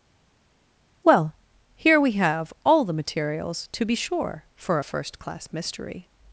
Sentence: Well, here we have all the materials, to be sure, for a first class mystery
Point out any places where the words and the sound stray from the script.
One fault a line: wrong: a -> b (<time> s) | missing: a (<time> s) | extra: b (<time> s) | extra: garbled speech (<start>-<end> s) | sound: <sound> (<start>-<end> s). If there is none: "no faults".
no faults